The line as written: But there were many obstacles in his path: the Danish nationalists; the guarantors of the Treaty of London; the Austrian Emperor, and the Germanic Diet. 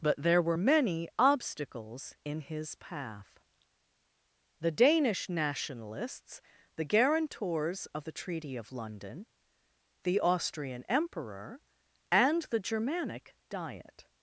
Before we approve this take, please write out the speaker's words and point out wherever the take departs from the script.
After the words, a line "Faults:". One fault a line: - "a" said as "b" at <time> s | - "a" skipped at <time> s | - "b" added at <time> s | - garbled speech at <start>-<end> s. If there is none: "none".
But there were many obstacles in his path: the Danish nationalists; the guarantors of the Treaty of London; the Austrian Emperor, and the Germanic Diet.
Faults:
none